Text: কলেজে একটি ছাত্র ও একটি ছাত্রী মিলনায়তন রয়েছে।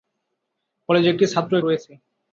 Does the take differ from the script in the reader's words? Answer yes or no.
yes